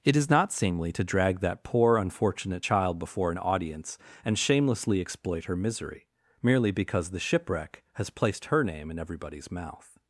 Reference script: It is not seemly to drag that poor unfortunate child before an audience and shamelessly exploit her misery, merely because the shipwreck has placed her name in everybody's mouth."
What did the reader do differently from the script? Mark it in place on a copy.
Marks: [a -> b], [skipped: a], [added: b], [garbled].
It is not seemly to drag that poor unfortunate child before an audience and shamelessly exploit her misery, merely because the shipwreck has placed her name in everybody's mouth."